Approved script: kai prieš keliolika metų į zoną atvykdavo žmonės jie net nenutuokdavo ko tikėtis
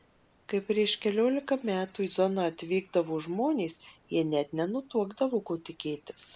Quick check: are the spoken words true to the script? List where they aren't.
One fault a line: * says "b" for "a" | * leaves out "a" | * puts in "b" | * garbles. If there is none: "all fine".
all fine